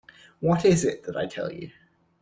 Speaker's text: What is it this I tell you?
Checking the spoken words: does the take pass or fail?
fail